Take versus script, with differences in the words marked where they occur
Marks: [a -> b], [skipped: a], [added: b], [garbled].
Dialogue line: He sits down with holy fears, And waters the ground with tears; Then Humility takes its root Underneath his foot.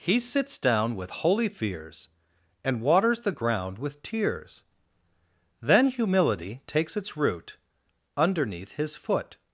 He sits down with holy fears, And waters the ground with tears; Then Humility takes its root Underneath his foot.